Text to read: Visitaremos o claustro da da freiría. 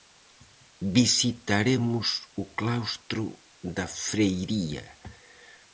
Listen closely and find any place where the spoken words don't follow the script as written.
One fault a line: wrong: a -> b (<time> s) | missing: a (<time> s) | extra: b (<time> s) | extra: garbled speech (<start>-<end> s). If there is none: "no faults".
missing: da (3.9 s)